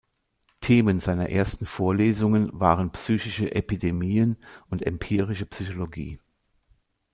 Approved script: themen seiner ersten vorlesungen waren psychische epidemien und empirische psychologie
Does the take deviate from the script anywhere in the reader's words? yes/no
no